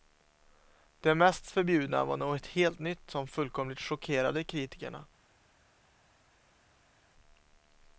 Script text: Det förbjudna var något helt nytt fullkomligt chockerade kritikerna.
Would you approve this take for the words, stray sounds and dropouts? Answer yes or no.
no